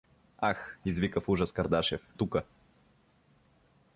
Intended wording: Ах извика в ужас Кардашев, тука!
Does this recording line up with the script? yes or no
yes